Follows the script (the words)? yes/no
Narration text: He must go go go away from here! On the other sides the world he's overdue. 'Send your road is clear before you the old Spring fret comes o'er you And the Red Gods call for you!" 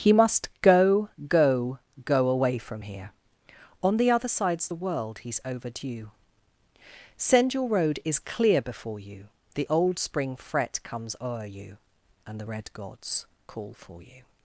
yes